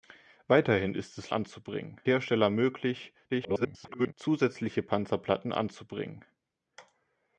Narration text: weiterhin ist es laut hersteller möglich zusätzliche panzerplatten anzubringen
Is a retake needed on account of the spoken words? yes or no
yes